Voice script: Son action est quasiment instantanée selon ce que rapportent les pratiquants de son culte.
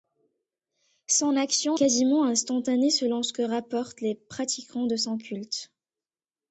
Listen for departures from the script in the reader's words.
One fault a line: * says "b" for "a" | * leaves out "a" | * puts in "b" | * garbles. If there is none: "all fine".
* leaves out "est"